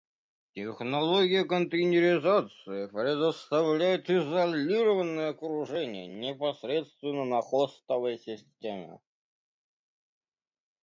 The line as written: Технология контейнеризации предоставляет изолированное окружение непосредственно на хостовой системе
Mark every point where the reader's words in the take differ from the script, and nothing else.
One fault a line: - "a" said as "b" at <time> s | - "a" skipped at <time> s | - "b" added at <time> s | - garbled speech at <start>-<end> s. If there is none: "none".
none